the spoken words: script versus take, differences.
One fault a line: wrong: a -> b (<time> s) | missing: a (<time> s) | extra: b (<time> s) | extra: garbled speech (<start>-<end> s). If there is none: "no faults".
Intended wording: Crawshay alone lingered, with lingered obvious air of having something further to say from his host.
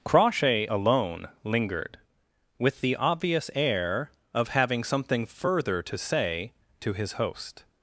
wrong: lingered -> the (2.8 s)
wrong: from -> to (6.8 s)